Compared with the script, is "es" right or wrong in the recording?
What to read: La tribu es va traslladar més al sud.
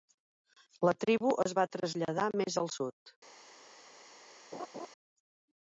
right